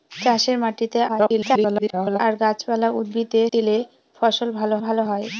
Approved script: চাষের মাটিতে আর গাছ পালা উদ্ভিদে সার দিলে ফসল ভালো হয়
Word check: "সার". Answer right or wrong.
wrong